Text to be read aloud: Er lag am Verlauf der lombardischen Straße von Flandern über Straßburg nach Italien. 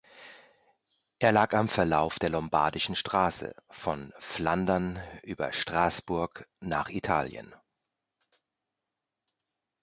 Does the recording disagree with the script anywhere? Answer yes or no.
no